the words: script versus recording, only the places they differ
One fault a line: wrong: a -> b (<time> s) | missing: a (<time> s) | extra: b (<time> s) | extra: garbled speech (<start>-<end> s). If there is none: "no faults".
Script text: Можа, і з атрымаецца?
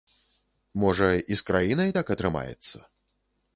extra: краінай так (1.5 s)